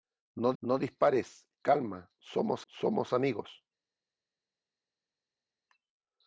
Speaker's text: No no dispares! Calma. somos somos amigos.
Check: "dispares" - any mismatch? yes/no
no